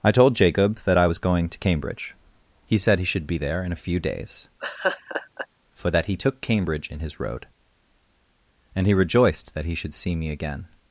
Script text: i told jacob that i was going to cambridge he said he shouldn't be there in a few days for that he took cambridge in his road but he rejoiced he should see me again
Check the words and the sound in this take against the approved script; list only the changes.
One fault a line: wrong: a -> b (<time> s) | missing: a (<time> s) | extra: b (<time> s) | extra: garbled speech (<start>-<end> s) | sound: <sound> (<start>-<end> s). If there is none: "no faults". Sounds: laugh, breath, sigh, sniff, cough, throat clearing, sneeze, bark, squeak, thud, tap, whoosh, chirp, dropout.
wrong: shouldn't -> should (3.1 s)
sound: laugh (4.6-5.5 s)
wrong: but -> and (8.7 s)
extra: that (9.5 s)